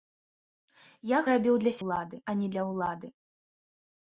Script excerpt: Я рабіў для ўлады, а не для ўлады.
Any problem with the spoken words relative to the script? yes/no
no